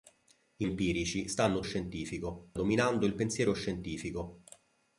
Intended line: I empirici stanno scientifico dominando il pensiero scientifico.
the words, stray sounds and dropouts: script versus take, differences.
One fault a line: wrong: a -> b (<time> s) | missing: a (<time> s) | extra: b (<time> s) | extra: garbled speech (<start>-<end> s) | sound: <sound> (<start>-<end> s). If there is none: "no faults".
no faults